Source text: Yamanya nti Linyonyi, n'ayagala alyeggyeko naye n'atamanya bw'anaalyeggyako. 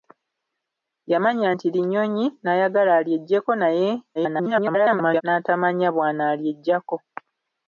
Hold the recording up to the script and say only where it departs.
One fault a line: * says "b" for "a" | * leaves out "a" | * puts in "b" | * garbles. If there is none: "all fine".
* garbles